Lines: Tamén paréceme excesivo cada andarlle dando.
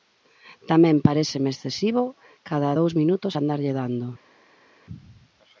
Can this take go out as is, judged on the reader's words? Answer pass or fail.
fail